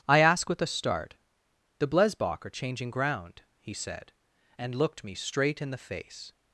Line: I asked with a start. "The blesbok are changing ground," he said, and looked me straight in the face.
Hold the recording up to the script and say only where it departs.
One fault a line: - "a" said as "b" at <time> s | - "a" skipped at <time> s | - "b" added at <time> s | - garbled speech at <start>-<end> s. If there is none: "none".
- "asked" said as "ask" at 0.2 s